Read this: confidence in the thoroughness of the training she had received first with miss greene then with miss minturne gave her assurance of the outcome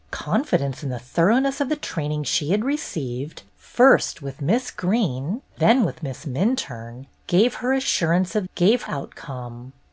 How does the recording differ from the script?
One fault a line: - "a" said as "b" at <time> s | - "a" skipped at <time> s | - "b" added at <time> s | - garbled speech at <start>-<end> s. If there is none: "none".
- "the" said as "gave" at 8.5 s